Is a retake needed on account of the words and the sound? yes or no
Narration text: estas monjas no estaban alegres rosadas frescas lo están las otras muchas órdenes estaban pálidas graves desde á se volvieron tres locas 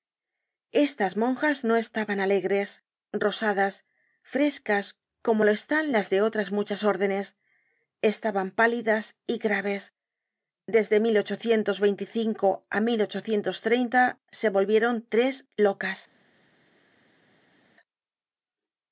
yes